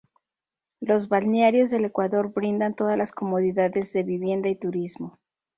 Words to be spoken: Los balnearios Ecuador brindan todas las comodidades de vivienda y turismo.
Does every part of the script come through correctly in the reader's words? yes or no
no